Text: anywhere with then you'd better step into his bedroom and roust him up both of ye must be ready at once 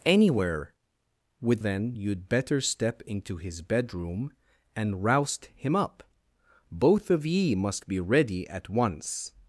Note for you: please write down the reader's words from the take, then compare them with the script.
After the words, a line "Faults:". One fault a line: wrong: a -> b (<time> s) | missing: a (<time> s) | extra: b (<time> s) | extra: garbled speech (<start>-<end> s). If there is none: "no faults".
anywhere with then you'd better step into his bedroom and roust him up both of ye must be ready at once
Faults:
no faults